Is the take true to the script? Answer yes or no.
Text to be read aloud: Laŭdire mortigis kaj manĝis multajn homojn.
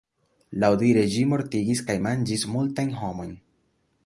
no